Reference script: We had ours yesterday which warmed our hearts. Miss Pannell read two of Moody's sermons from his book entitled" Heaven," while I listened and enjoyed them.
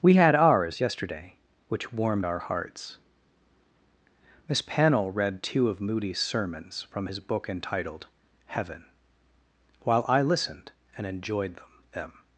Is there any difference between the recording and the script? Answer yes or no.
yes